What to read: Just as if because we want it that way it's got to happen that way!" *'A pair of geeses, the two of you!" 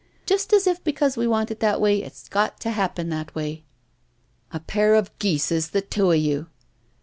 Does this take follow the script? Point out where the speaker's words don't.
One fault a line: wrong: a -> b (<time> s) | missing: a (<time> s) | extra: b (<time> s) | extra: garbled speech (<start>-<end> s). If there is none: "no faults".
no faults